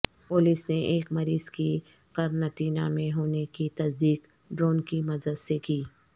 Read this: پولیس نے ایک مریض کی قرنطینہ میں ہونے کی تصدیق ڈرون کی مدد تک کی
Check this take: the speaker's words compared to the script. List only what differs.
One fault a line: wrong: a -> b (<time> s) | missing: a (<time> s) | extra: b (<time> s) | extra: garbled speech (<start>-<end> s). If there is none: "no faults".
wrong: تک -> سے (5.4 s)